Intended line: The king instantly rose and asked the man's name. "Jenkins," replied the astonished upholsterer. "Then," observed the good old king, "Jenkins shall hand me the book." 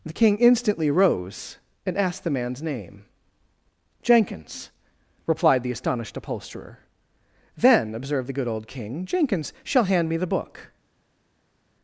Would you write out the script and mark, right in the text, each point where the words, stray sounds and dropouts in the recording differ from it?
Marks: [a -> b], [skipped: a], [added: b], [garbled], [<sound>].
The king instantly rose and asked the man's name. "Jenkins," replied the astonished upholsterer. "Then," observed the good old king, "Jenkins shall hand me the book."